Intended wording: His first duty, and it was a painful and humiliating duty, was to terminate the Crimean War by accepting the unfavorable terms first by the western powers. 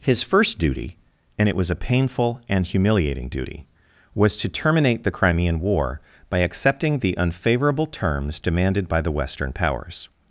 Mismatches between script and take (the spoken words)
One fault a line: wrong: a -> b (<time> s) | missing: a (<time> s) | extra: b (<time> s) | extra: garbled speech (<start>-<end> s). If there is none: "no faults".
wrong: first -> demanded (8.4 s)